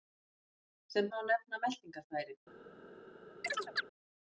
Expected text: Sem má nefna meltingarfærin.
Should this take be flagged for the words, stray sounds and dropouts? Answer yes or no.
yes